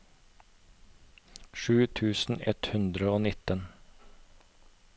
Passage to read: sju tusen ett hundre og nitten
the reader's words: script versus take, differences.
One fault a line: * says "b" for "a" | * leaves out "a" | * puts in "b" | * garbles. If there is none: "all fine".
all fine